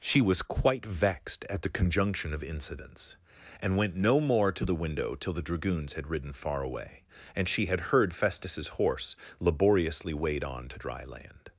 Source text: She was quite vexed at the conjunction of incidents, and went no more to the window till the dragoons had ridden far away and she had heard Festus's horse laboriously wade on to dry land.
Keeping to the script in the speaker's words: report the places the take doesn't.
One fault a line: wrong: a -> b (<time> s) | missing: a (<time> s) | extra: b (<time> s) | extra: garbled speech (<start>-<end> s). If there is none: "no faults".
no faults